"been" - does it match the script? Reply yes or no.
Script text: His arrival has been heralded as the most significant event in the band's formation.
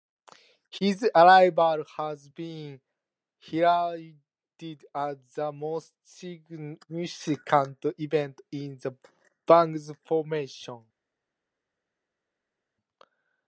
yes